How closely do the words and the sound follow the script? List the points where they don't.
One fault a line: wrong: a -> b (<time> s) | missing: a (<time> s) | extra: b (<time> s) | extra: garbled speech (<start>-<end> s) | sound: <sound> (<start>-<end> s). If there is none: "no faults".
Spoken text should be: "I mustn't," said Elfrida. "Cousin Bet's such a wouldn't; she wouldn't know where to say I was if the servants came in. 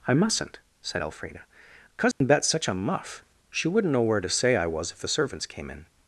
sound: dropout (2.1-2.2 s)
wrong: wouldn't -> muff (2.7 s)